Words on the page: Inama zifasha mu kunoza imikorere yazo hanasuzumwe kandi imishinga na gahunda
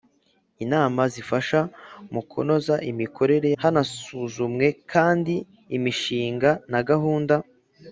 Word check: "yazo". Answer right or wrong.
wrong